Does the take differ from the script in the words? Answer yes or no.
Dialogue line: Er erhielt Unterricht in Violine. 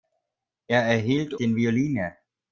yes